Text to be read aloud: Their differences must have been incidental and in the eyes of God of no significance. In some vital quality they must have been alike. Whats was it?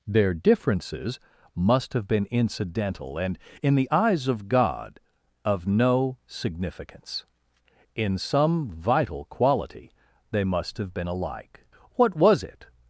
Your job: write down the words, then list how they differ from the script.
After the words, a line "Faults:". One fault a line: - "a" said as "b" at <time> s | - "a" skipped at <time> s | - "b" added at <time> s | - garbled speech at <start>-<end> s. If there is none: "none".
Their differences must have been incidental and in the eyes of God of no significance. In some vital quality they must have been alike. What was it?
Faults:
- "Whats" said as "What" at 11.9 s